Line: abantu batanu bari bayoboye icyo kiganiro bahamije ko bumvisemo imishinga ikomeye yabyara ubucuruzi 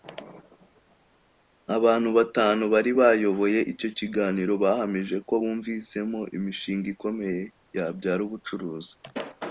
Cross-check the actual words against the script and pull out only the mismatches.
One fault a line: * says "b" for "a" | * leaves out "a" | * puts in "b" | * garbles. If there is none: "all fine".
all fine